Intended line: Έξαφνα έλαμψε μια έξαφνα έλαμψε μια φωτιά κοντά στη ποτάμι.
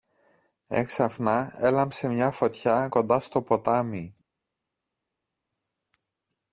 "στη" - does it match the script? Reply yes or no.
no